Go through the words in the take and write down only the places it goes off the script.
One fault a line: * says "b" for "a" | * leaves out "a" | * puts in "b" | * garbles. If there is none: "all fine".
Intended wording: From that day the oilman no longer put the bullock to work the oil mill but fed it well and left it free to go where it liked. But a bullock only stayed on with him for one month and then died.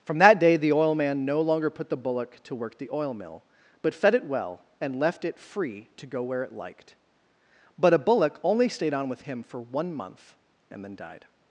all fine